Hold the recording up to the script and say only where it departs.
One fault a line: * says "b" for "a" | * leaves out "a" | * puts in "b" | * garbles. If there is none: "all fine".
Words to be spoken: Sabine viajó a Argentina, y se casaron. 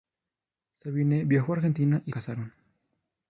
* leaves out "se"